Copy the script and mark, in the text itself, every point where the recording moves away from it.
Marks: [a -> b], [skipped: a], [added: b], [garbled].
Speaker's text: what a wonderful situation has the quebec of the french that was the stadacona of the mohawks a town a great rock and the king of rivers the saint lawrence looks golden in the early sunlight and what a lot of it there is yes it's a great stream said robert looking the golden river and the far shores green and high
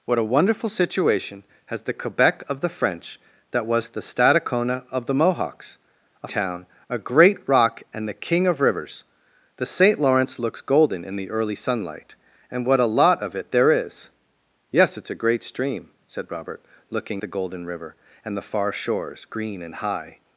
what a wonderful situation has the quebec of the french that was the stadacona of the mohawks a town a great rock and the king of rivers the saint lawrence looks golden in the early sunlight and what a lot of it there is yes it's a great stream said robert looking the golden river and the far shores green and high